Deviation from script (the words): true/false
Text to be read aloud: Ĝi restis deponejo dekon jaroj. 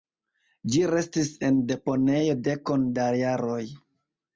true